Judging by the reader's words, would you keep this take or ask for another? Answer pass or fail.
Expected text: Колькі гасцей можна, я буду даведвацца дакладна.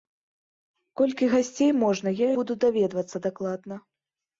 pass